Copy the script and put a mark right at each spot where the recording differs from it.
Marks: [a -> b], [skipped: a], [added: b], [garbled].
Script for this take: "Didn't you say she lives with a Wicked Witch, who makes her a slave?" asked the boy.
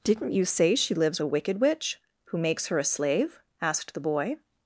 "Didn't you say she lives [skipped: with] a Wicked Witch, who makes her a slave?" asked the boy.